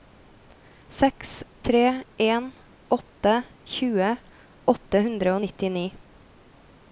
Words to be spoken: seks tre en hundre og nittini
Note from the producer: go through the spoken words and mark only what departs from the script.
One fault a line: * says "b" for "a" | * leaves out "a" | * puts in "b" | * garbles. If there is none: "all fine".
* puts in "åtte tjue åtte"